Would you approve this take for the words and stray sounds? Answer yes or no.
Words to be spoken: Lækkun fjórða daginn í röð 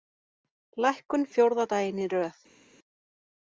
yes